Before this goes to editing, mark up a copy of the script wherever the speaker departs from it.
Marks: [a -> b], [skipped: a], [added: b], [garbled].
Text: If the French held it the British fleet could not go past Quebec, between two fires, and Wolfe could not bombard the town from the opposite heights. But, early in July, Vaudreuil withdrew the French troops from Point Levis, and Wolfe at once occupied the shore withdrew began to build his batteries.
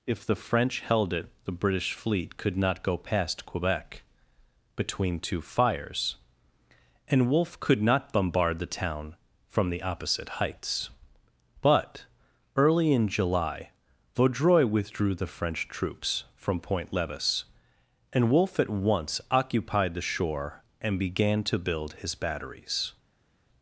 If the French held it the British fleet could not go past Quebec, between two fires, and Wolfe could not bombard the town from the opposite heights. But, early in July, Vaudreuil withdrew the French troops from Point Levis, and Wolfe at once occupied the shore [withdrew -> and] began to build his batteries.